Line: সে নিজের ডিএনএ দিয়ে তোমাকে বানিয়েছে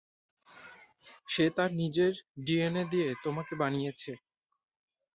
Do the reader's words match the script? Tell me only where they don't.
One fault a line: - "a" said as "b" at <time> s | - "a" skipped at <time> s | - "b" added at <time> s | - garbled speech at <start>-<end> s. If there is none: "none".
- "তার" added at 1.6 s